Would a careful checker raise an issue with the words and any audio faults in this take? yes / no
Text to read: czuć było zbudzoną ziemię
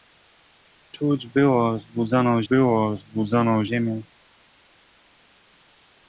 yes